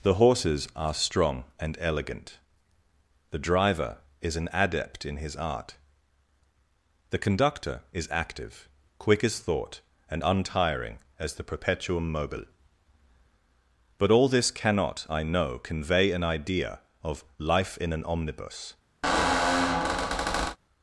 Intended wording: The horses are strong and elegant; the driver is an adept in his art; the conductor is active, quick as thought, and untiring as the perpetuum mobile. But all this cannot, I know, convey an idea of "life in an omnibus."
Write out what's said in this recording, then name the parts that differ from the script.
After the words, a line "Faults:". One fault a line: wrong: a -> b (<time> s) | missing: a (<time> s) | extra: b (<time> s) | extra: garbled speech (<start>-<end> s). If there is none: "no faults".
The horses are strong and elegant; the driver is an adept in his art; the conductor is active, quick as thought, and untiring as the perpetuum mobile. But all this cannot, I know, convey an idea of "life in an omnibus."
Faults:
no faults